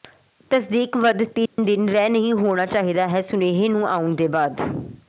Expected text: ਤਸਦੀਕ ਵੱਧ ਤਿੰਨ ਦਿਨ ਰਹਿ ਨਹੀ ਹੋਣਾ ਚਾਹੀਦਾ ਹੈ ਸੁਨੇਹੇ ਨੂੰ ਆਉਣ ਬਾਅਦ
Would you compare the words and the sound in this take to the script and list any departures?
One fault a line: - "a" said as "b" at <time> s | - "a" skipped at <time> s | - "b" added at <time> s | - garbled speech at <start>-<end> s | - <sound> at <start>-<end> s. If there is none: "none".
- dropout at 1.5-1.6 s
- "ਦੇ" added at 4.2 s